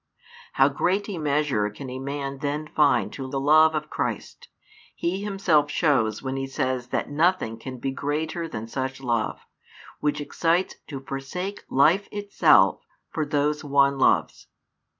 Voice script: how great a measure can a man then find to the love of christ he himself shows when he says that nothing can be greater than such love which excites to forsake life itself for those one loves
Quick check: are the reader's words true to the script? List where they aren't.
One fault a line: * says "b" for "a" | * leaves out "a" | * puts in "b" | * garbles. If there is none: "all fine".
all fine